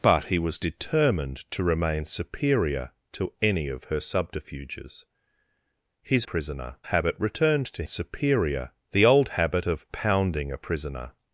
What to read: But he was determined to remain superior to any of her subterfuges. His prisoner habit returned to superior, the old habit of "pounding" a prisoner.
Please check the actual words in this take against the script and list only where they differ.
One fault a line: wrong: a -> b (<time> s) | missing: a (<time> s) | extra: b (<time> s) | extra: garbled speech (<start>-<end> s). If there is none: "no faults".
no faults